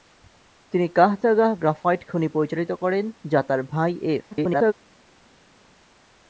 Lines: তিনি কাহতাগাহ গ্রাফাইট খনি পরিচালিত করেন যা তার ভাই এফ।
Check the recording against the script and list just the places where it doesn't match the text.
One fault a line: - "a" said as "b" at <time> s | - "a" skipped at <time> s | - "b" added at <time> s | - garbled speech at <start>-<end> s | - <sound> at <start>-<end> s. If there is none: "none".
- garbled speech at 4.3-4.7 s